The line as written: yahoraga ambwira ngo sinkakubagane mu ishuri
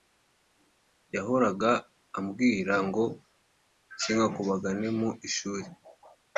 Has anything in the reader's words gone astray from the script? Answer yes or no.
no